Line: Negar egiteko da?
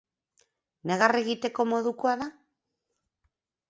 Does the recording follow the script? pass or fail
fail